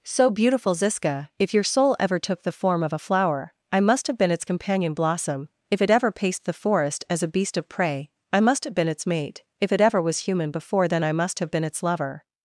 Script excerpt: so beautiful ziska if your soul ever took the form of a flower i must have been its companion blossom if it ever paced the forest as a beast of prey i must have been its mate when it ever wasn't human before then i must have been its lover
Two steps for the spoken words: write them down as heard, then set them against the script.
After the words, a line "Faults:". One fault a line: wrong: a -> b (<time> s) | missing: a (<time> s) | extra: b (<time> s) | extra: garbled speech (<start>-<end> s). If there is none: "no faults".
so beautiful ziska if your soul ever took the form of a flower i must have been its companion blossom if it ever paced the forest as a beast of prey i must have been its mate if it ever was human before then i must have been its lover
Faults:
wrong: when -> if (9.6 s)
wrong: wasn't -> was (10.0 s)